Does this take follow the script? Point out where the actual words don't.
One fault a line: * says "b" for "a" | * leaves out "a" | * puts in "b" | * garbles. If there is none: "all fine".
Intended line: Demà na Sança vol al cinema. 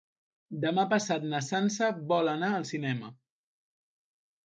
* puts in "passat"
* puts in "anar"